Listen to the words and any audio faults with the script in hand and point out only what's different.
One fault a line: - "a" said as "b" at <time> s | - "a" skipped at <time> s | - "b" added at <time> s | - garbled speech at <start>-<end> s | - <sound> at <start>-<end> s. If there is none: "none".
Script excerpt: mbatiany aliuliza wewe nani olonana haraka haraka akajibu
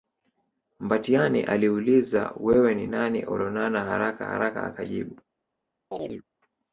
- "ni" added at 2.8 s
- chirp at 5.9-6.2 s